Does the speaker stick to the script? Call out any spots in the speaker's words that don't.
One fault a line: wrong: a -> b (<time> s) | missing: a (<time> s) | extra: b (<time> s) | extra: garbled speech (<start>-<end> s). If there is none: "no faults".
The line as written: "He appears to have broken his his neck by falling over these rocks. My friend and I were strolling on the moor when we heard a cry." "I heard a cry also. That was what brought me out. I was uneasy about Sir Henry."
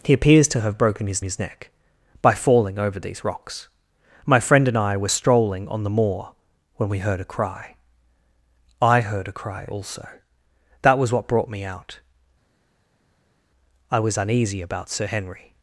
no faults